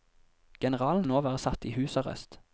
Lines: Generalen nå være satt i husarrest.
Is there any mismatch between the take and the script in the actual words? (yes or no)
no